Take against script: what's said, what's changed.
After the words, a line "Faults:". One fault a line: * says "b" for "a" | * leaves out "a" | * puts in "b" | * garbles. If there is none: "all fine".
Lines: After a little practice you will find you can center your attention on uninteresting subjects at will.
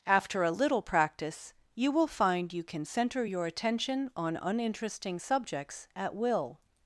After a little practice you will find you can center your attention on uninteresting subjects at will.
Faults:
all fine